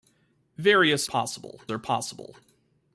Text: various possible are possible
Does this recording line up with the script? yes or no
yes